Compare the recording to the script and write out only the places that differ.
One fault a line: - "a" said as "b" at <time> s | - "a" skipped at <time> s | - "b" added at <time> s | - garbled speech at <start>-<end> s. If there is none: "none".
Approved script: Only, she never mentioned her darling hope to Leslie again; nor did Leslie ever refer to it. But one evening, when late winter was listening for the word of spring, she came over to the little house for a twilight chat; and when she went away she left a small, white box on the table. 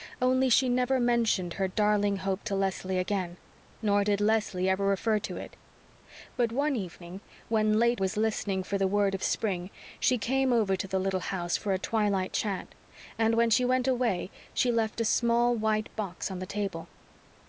- "winter" skipped at 8.0 s